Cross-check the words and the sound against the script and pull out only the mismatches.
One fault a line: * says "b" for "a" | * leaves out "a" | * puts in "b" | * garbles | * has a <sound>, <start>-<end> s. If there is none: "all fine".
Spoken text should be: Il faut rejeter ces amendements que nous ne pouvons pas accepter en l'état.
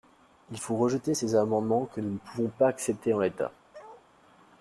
* has a bark, 3.7-4.1 s